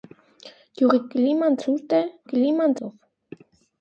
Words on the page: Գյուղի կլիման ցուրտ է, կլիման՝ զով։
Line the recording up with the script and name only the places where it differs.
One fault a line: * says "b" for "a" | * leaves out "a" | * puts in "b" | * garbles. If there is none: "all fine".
all fine